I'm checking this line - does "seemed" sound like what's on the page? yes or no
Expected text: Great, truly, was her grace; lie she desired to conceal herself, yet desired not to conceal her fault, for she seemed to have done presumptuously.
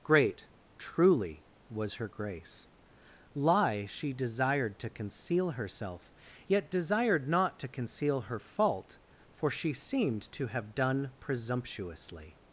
yes